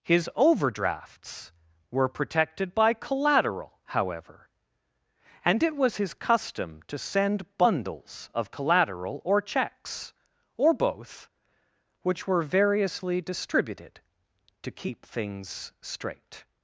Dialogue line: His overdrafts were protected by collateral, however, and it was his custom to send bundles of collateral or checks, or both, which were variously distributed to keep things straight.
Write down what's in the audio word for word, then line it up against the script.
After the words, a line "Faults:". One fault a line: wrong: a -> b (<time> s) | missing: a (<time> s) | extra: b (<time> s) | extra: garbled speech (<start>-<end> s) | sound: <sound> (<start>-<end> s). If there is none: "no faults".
His overdrafts were protected by collateral, however, and it was his custom to send bundles of collateral or checks, or both, which were variously distributed to keep things straight.
Faults:
no faults